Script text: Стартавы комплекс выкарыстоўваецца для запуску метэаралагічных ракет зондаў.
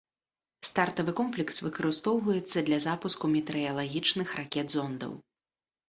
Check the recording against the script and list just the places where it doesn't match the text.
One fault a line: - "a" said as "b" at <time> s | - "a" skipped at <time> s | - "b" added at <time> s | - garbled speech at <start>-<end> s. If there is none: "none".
none